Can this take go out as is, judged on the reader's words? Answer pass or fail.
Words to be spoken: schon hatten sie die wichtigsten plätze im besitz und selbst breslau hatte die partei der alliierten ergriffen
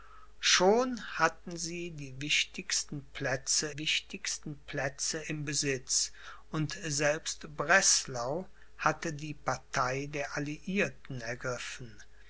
fail